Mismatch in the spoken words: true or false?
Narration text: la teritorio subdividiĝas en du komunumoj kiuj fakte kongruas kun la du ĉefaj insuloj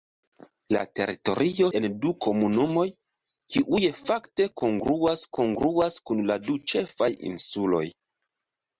true